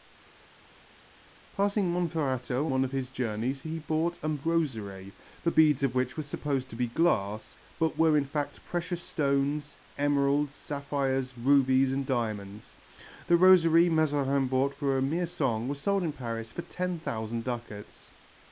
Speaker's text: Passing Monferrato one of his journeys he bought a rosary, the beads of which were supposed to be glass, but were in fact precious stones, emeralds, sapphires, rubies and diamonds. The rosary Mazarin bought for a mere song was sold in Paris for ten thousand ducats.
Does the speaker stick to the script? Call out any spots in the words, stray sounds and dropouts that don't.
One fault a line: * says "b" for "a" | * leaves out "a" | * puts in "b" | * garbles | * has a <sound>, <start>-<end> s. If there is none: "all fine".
all fine